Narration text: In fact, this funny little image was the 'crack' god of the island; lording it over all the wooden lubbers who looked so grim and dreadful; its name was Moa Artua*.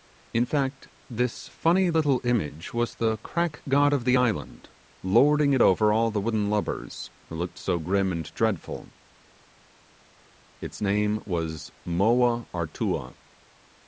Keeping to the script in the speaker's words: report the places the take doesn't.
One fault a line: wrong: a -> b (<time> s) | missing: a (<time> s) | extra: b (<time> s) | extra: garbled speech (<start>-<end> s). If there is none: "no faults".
no faults